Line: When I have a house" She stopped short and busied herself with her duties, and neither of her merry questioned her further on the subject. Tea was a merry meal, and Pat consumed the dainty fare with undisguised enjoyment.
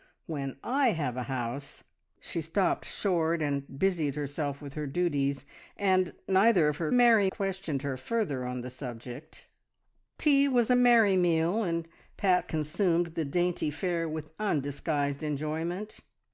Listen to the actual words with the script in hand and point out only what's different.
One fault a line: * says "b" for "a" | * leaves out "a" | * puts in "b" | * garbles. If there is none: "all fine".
all fine